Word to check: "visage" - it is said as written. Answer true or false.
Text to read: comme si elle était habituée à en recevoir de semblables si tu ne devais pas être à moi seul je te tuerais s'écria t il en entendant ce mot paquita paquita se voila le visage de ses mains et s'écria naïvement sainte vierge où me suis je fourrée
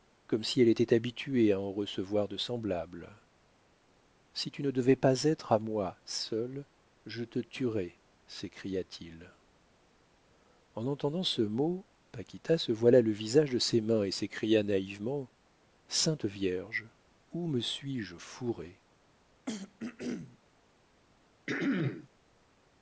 true